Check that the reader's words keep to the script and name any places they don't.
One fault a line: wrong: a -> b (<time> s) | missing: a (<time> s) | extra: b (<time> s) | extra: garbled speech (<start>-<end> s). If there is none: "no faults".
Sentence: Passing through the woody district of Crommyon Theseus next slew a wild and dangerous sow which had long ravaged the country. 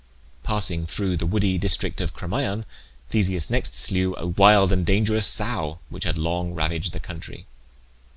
no faults